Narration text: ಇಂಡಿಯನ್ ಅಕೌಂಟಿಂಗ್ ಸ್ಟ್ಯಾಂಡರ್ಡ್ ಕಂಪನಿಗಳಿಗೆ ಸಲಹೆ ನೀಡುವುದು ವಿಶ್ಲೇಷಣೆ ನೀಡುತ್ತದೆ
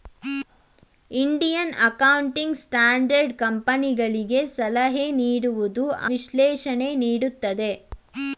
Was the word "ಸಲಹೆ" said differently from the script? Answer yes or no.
no